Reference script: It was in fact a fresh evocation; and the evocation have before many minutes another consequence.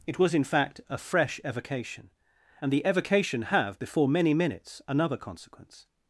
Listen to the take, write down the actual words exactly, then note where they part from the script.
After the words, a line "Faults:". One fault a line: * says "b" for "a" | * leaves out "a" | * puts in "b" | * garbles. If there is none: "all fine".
It was in fact a fresh evocation; and the evocation have before many minutes another consequence.
Faults:
all fine